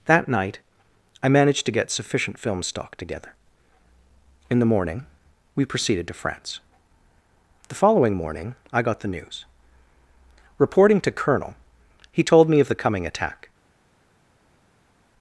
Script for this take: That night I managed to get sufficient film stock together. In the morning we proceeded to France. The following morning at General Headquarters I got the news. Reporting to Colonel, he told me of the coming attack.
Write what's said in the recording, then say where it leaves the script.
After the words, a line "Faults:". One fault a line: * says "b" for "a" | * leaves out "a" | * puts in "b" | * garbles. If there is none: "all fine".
That night I managed to get sufficient film stock together. In the morning we proceeded to France. The following morning I got the news. Reporting to Colonel, he told me of the coming attack.
Faults:
* leaves out "at General Headquarters"